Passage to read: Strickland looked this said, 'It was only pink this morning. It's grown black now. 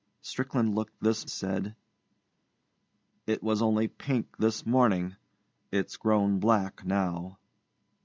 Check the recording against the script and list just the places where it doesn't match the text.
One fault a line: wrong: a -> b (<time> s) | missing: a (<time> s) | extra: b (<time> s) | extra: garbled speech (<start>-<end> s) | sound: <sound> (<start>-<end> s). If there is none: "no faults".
no faults